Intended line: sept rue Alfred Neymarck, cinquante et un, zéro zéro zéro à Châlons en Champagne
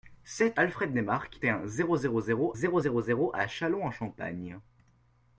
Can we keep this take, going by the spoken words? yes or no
no